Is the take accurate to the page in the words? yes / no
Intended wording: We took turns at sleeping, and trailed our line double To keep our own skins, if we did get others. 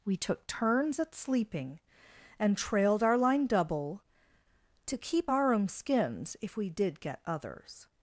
yes